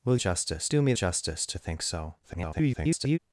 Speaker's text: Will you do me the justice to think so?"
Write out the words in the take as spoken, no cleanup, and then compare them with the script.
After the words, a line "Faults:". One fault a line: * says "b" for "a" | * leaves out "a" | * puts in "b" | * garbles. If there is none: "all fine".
Will justice do me justice to think so?" [garbled]
Faults:
* says "justice" for "you"
* leaves out "the"
* garbles